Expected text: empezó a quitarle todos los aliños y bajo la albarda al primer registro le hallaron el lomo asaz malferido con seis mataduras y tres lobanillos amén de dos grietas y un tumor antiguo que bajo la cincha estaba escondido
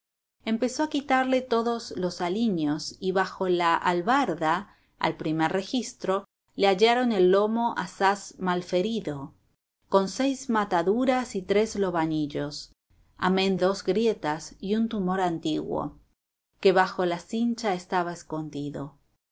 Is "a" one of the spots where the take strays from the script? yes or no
no